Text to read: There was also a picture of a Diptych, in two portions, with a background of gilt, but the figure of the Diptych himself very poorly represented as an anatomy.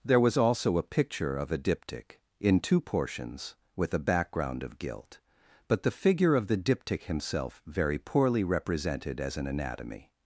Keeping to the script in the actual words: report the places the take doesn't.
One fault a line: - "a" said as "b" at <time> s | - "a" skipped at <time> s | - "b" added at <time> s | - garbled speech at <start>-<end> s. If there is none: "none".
none